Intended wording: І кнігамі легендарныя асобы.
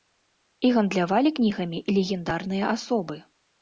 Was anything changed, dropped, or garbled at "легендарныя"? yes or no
no